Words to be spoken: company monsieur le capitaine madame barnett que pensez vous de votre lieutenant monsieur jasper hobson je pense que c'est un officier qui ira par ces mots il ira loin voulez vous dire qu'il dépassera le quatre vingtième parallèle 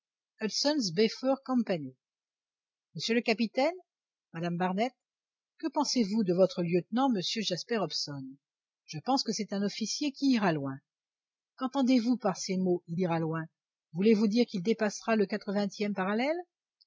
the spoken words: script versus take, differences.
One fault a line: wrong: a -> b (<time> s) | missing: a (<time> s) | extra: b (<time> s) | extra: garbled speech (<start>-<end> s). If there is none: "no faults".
extra: loin qu'entendez vous (10.5 s)